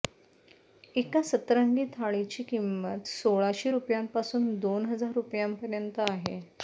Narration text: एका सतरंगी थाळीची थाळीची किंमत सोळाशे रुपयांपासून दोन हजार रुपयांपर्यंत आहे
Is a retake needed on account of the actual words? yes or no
yes